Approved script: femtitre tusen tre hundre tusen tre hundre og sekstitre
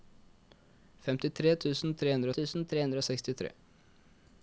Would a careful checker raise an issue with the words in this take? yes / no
no